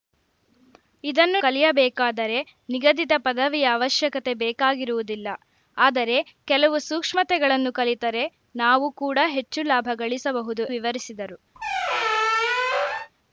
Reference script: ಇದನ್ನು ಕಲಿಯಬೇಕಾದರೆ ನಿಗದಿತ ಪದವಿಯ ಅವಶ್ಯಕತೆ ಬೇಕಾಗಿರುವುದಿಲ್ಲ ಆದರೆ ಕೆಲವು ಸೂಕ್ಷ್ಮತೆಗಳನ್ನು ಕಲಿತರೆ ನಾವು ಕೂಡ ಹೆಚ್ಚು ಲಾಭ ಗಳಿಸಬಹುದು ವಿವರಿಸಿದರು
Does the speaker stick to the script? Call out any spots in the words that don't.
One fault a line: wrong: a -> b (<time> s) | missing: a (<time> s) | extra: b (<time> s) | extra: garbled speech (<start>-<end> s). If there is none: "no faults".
no faults